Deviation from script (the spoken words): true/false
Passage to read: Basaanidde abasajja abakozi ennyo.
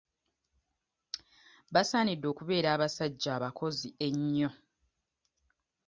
true